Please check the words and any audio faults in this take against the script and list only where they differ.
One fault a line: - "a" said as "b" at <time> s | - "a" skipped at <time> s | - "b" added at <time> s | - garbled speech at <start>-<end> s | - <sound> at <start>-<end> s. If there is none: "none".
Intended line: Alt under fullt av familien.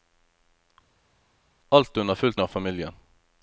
none